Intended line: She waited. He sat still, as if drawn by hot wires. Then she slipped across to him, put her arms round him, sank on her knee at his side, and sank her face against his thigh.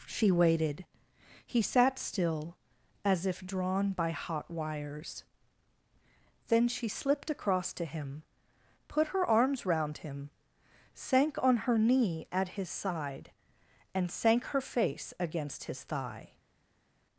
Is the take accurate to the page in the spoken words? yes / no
yes